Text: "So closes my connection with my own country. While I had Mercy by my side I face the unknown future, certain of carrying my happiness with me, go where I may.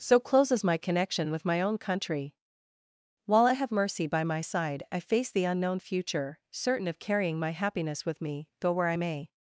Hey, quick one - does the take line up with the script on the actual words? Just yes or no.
no